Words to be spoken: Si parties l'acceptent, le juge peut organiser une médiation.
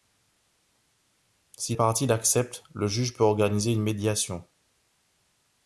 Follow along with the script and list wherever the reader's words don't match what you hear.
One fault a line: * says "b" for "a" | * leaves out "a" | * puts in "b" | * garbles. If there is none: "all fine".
all fine